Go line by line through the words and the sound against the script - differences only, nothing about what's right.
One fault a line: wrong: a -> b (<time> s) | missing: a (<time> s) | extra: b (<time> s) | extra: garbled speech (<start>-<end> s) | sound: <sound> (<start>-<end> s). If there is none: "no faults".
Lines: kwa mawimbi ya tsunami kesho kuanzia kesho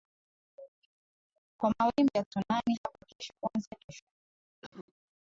extra: hapo (2.8 s)
sound: cough (4.6-4.9 s)